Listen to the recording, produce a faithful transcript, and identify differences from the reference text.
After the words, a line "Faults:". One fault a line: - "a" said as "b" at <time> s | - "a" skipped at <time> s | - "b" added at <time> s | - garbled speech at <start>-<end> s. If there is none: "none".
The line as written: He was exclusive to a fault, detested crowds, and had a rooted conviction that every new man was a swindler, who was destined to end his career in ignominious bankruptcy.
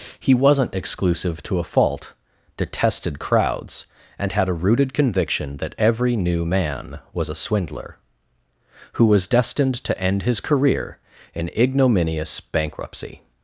He wasn't exclusive to a fault, detested crowds, and had a rooted conviction that every new man was a swindler, who was destined to end his career in ignominious bankruptcy.
Faults:
- "was" said as "wasn't" at 0.3 s